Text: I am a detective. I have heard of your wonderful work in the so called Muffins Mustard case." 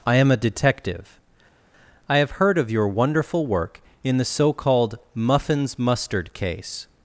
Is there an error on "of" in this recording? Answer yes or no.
no